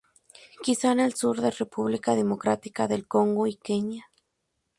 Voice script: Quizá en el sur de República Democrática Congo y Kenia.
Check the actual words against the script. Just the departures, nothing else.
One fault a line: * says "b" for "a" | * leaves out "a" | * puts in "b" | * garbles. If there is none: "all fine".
* puts in "del"